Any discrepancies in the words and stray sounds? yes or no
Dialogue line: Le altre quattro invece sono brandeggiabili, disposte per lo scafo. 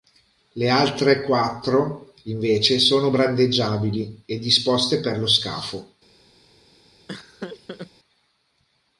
yes